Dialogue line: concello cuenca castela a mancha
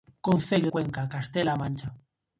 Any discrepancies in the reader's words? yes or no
no